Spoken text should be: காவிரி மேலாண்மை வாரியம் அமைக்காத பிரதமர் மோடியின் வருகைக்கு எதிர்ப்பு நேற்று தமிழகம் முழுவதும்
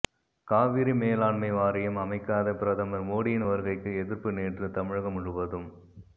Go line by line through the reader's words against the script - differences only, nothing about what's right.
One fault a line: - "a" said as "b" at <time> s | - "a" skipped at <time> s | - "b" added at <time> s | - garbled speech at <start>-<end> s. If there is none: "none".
none